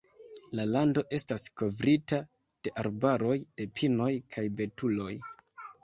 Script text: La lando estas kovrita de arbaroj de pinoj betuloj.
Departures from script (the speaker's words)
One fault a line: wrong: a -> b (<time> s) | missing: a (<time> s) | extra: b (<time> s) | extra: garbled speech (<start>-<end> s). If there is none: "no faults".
extra: kaj (4.4 s)